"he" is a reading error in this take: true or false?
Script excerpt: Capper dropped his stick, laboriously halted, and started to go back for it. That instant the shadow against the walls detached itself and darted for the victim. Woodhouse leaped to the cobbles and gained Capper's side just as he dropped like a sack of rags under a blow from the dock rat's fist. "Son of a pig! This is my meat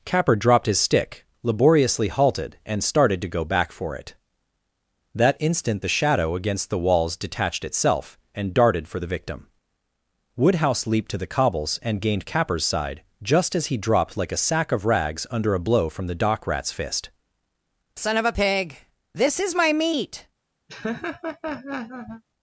false